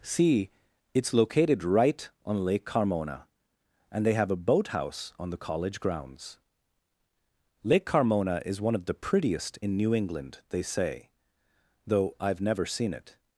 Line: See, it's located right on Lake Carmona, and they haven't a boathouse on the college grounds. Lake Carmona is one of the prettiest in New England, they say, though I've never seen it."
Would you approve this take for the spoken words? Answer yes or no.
no